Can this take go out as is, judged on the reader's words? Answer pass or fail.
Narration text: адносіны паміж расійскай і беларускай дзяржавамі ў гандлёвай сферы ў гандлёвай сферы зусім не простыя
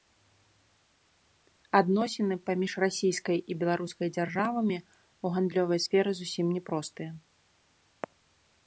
fail